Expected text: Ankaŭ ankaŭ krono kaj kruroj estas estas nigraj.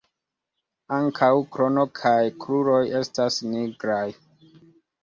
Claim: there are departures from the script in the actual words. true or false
true